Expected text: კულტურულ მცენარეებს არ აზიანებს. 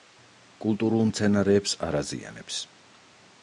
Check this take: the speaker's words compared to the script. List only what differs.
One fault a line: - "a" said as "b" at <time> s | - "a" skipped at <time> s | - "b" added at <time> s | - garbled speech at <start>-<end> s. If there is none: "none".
none